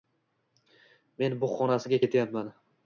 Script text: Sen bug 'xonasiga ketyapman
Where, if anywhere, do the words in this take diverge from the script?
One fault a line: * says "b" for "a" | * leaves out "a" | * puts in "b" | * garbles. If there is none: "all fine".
* says "Men" for "Sen"